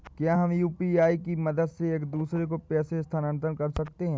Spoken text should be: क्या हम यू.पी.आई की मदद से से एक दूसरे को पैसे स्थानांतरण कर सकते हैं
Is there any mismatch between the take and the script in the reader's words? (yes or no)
yes